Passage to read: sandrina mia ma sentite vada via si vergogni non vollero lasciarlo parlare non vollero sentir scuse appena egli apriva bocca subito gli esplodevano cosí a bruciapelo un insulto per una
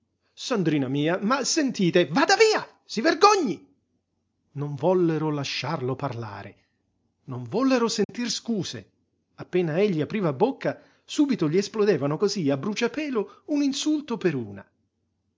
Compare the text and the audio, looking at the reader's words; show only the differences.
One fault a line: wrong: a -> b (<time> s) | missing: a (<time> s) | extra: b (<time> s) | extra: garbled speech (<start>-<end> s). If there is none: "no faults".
no faults